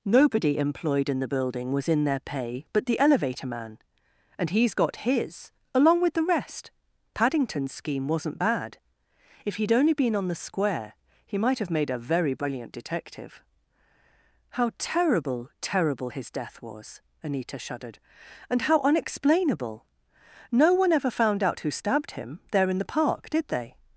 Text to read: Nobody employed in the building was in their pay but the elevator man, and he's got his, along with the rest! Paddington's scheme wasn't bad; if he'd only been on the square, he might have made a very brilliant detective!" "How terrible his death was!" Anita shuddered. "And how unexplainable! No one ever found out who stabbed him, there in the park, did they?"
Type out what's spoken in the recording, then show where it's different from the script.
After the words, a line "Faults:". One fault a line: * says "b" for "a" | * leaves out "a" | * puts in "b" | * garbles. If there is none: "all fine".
Nobody employed in the building was in their pay but the elevator man, and he's got his, along with the rest! Paddington's scheme wasn't bad; if he'd only been on the square, he might have made a very brilliant detective!" "How terrible terrible his death was!" Anita shuddered. "And how unexplainable! No one ever found out who stabbed him, there in the park, did they?"
Faults:
* puts in "terrible"